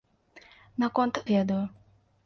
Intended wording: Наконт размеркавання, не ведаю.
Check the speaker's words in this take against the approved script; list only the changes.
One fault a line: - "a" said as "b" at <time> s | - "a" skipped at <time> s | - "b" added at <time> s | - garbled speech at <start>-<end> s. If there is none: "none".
- "размеркавання не" skipped at 1.2 s